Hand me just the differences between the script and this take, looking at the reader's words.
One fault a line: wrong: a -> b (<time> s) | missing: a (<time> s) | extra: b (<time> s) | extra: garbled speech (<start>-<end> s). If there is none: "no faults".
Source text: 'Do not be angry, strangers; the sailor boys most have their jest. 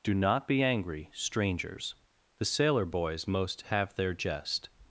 no faults